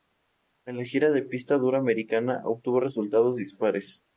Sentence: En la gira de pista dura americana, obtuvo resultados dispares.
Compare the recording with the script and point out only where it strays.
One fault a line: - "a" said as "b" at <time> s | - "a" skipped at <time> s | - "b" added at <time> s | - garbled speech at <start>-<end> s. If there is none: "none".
none